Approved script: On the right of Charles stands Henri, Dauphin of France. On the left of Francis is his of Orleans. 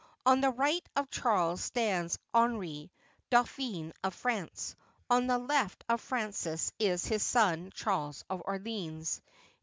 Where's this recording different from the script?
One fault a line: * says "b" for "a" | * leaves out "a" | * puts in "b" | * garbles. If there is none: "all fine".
* puts in "son Charles"